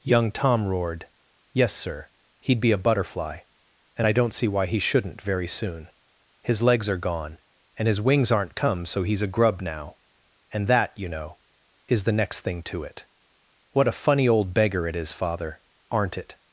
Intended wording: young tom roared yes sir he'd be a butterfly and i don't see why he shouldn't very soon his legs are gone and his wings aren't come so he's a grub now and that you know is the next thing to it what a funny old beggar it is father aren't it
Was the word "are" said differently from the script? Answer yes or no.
no